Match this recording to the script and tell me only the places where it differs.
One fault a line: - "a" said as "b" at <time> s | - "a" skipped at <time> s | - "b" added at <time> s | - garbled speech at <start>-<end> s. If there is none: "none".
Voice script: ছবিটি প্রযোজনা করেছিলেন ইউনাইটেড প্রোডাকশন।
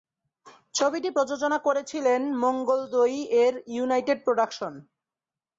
- "মঙ্গলদৈ-এর" added at 2.4 s